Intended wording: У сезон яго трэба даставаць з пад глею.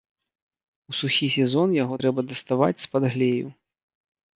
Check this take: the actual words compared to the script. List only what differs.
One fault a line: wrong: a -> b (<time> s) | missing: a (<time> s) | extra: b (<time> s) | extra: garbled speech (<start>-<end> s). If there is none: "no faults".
extra: сухі (1.0 s)